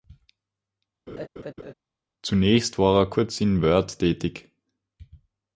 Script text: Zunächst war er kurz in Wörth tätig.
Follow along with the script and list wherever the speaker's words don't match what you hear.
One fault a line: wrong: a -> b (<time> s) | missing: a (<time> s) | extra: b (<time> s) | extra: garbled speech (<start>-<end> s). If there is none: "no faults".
no faults